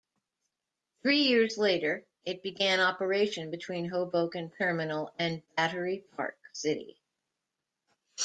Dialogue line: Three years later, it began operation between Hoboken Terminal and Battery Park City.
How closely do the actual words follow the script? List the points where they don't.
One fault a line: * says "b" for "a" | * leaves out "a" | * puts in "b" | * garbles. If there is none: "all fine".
all fine